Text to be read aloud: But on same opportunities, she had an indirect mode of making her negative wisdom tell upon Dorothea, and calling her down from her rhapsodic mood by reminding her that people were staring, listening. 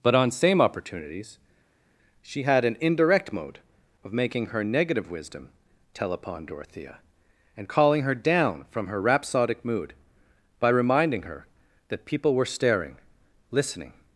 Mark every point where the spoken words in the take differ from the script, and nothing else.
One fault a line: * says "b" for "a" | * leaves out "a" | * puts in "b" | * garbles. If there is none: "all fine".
all fine